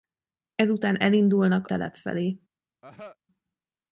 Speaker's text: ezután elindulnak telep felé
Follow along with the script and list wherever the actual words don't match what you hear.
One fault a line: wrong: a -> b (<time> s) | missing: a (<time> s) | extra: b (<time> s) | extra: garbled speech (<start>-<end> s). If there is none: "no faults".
no faults